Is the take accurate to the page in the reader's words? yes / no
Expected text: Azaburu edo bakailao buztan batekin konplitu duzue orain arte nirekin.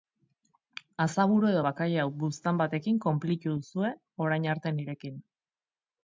yes